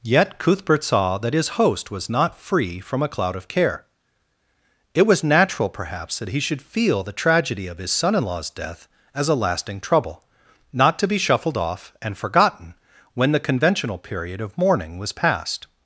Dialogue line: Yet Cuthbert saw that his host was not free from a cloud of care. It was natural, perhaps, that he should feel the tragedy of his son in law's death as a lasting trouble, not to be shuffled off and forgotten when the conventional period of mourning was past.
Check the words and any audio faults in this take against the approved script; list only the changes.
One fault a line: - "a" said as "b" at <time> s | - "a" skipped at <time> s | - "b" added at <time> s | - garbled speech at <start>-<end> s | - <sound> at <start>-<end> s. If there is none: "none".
none